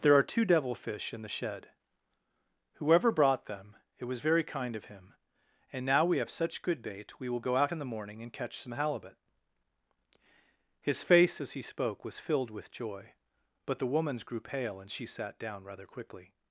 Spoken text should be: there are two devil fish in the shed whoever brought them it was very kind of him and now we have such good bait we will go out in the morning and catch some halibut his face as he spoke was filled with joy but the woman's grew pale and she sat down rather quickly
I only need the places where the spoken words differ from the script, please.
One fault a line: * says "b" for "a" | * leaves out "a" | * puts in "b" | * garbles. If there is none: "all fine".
all fine